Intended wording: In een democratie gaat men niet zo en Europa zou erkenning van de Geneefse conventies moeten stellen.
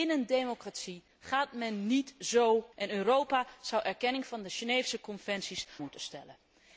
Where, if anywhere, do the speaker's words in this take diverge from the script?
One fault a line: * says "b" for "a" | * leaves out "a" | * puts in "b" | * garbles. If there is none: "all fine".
all fine